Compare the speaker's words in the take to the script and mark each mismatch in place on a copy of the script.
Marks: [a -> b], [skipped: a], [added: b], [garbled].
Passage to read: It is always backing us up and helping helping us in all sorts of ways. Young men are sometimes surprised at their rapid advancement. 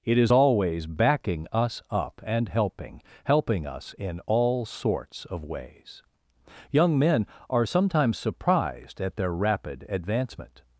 It is always backing us up and helping helping us in all sorts of ways. Young men are sometimes surprised at their rapid advancement.